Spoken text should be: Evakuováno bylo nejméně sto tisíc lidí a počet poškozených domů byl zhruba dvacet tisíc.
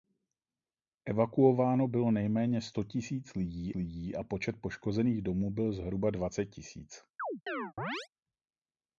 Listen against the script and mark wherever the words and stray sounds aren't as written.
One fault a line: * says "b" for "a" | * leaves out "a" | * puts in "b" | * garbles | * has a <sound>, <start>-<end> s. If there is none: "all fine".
* puts in "lidí"
* has a chirp, 7.2-8.1 s